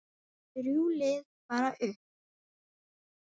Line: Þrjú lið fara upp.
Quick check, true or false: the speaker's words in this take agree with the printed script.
true